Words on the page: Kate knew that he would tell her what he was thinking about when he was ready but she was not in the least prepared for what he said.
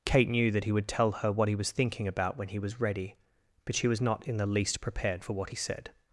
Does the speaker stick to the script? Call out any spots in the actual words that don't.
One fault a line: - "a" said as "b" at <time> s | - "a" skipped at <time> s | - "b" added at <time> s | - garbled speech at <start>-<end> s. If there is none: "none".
none